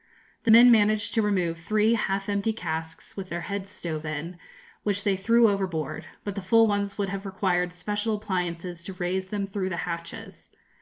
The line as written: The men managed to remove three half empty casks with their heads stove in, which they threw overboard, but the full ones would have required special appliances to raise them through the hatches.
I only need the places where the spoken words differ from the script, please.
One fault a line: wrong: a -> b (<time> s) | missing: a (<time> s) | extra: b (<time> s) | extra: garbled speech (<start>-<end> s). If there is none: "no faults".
no faults